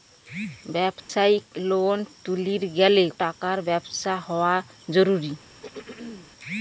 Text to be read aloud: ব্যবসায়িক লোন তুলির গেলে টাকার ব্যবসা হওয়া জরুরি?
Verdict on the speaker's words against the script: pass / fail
pass